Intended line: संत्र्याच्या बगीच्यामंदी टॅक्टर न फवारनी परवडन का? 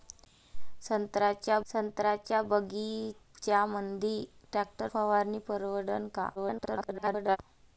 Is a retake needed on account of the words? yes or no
yes